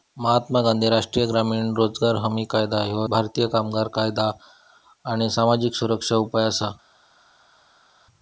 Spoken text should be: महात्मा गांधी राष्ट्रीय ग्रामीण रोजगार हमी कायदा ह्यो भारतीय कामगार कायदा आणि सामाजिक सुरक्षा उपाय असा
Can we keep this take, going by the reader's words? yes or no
yes